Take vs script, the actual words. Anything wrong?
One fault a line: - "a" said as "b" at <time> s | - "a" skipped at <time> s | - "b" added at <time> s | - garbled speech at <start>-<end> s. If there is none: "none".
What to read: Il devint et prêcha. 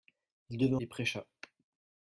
none